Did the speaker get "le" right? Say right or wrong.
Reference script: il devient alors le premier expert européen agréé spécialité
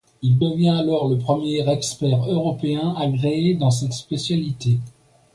right